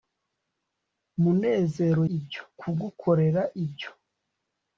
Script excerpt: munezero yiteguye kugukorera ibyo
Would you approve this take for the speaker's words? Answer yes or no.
no